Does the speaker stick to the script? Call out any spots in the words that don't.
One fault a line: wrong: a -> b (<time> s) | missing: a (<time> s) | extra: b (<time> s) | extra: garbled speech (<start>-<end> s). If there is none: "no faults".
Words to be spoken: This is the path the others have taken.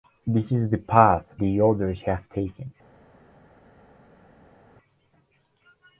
no faults